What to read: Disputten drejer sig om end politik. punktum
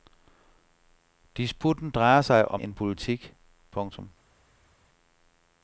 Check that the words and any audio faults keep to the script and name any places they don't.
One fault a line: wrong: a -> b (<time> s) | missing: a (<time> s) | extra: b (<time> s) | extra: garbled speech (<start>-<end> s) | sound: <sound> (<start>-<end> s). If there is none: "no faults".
no faults